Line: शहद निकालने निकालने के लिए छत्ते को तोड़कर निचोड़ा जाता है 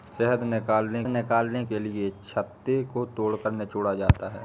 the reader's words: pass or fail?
pass